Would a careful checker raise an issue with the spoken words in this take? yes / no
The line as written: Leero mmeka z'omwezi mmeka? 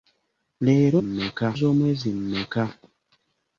no